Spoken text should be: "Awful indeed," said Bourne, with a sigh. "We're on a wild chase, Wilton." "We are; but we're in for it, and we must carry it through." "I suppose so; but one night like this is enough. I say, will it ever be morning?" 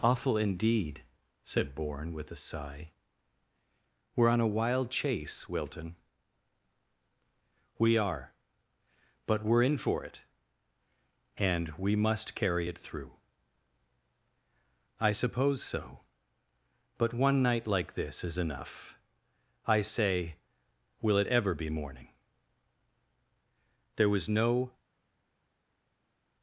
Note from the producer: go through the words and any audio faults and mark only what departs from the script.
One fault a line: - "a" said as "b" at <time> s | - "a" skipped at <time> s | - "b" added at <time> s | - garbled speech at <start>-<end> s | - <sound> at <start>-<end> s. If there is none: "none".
- "There was no" added at 24.0 s